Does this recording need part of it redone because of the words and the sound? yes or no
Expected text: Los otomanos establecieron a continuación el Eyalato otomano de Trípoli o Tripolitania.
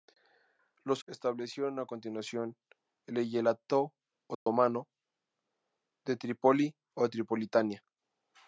yes